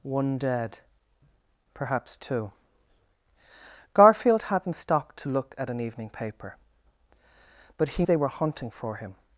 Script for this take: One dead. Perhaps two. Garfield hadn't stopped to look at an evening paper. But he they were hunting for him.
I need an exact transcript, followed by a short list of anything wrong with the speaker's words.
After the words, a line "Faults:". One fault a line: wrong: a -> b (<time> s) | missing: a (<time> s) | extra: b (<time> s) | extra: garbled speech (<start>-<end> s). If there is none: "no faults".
One dead. Perhaps two. Garfield hadn't stopped to look at an evening paper. But he they were hunting for him.
Faults:
no faults